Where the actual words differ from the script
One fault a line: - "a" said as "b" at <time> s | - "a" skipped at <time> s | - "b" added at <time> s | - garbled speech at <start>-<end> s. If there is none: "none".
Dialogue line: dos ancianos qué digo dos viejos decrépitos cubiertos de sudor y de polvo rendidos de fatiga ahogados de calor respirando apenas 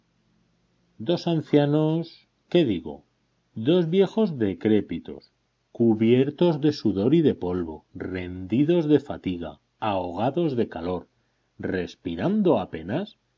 none